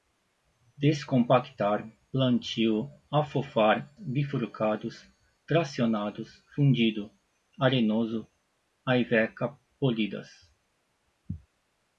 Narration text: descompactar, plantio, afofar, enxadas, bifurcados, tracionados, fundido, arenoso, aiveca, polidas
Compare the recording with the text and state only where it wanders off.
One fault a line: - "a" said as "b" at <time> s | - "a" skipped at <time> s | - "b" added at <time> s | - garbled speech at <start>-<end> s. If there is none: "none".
- "enxadas" skipped at 3.9 s